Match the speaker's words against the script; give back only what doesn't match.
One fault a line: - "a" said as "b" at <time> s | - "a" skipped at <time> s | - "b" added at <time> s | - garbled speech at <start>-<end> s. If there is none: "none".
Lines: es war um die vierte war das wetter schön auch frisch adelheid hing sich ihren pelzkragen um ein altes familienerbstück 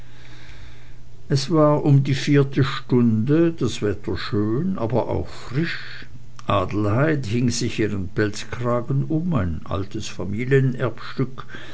- "war" said as "stunde" at 2.6 s
- "aber" added at 4.8 s